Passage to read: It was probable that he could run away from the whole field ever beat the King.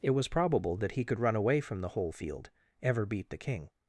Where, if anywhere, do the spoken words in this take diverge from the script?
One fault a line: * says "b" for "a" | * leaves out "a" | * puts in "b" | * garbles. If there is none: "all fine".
all fine